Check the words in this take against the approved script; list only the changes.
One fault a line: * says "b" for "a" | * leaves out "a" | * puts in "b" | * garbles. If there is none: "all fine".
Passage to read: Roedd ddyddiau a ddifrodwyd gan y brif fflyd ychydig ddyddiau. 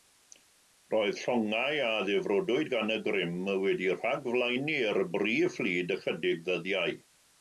* says "llongau" for "ddyddiau"
* puts in "grym wedi rhagflaenu'r"